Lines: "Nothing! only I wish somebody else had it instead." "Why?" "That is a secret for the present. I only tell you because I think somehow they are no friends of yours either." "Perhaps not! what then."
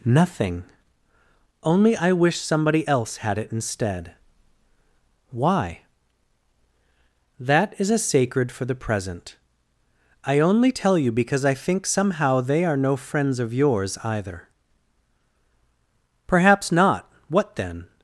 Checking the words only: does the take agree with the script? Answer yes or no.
no